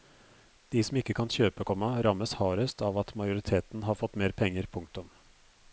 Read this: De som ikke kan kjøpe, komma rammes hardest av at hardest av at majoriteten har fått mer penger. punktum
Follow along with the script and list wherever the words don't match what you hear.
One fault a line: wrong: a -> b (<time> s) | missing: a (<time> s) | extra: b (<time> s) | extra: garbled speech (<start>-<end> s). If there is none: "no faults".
missing: hardest av at (3.2 s)